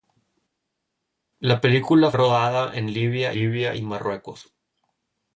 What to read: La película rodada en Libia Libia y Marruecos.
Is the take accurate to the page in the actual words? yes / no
yes